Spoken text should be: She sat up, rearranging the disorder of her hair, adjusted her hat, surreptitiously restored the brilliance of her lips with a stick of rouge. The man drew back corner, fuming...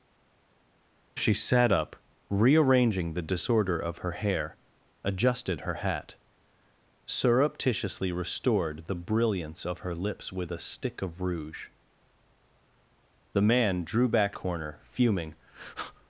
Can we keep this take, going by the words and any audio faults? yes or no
yes